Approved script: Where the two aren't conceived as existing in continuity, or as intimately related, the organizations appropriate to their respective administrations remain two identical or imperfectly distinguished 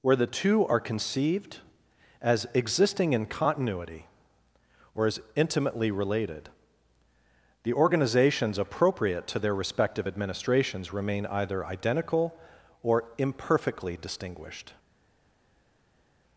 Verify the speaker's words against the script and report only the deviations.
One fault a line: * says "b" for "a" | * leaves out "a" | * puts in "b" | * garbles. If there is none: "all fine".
* says "are" for "aren't"
* says "either" for "two"